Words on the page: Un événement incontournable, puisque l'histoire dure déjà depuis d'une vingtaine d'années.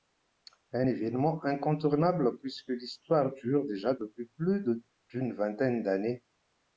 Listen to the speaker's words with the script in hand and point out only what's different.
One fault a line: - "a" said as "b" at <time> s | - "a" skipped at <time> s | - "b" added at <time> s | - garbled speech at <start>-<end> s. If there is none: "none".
- "plus" added at 4.2 s